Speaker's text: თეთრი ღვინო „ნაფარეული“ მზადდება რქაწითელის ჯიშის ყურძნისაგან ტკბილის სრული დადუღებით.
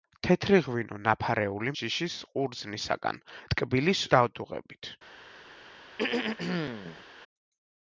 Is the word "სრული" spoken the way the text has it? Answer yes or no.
no